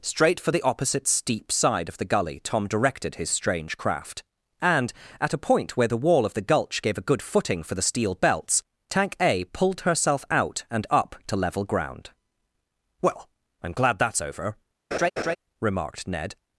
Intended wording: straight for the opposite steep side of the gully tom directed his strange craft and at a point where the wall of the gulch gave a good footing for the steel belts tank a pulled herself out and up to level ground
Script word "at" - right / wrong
right